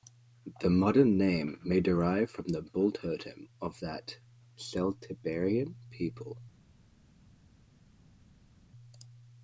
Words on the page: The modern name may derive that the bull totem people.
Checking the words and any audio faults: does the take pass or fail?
fail